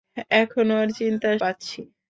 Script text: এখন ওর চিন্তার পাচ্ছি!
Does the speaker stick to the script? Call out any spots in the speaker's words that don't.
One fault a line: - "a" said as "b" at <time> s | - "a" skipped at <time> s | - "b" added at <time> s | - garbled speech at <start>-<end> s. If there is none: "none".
none